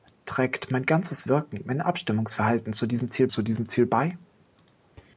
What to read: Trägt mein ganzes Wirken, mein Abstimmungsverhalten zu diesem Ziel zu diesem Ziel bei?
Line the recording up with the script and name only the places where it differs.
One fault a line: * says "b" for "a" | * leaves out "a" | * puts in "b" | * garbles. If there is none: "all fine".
all fine